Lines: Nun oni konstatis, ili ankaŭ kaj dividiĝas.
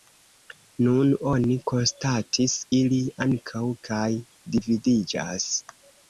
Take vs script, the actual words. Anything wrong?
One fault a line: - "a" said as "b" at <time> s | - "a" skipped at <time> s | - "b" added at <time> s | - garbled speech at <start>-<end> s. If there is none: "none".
none